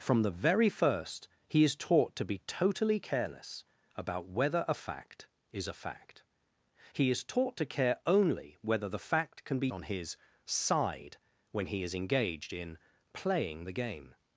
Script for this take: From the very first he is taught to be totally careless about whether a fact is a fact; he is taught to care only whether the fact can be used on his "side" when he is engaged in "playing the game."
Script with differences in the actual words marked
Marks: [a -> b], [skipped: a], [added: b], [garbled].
From the very first he is taught to be totally careless about whether a fact is a fact; he is taught to care only whether the fact can be [skipped: used] on his "side" when he is engaged in "playing the game."